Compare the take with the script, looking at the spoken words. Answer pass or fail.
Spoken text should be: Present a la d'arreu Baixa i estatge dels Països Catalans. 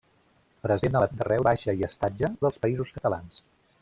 pass